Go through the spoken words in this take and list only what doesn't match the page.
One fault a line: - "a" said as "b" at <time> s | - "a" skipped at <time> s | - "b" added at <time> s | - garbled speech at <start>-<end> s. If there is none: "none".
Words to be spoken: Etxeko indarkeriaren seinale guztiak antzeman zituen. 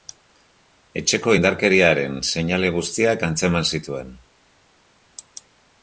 none